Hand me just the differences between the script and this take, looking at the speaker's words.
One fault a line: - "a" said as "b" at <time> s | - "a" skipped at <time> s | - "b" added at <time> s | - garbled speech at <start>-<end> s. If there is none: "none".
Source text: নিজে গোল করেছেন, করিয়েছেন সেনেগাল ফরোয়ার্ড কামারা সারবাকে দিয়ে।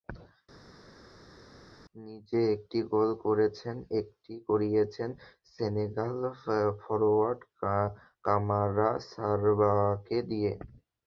- "একটি" added at 2.5 s
- "একটি" added at 4.0 s